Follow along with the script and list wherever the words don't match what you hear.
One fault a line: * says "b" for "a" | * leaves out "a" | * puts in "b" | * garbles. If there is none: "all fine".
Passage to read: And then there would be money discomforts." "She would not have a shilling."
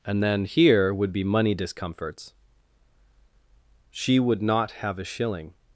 * says "here" for "there"